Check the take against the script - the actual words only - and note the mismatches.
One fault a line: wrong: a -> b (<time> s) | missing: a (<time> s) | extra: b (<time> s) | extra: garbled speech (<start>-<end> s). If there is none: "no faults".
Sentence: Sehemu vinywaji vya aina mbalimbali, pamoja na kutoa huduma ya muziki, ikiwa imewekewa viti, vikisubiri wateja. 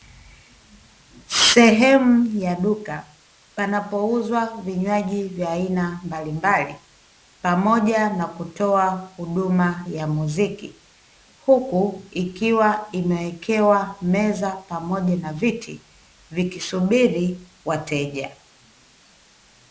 extra: ya duka panapouzwa (2.4 s)
extra: huku (11.4 s)
extra: meza pamoja na (14.0 s)